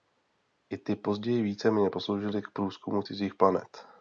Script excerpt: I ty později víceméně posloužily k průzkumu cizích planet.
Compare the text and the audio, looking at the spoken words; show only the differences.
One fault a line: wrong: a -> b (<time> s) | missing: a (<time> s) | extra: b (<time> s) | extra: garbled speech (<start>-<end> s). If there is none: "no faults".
no faults